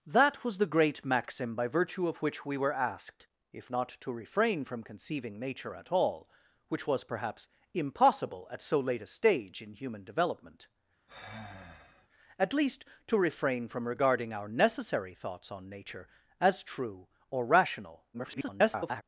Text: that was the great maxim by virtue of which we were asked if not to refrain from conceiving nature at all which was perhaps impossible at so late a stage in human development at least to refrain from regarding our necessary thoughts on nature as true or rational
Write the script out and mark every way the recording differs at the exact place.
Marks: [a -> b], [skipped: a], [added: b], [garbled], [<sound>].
that was the great maxim by virtue of which we were asked if not to refrain from conceiving nature at all which was perhaps impossible at so late a stage in human development [sigh] at least to refrain from regarding our necessary thoughts on nature as true or rational [garbled]